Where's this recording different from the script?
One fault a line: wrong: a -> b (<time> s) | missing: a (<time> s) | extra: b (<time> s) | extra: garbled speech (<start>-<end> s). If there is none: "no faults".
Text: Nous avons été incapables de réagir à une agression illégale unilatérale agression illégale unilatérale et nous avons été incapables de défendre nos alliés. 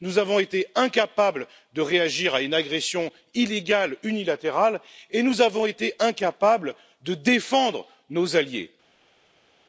missing: agression illégale unilatérale (4.8 s)